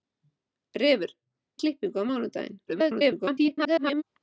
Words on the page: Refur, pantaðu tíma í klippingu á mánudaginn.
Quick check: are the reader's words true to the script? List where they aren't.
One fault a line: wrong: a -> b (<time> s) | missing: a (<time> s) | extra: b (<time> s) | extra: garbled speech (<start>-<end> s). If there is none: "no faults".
missing: pantaðu tíma (1.1 s)
extra: garbled speech (2.7-4.0 s)